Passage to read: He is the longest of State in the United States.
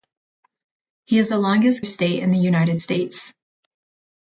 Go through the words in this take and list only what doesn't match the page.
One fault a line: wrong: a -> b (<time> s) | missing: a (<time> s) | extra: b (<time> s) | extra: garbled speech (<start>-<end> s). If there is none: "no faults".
no faults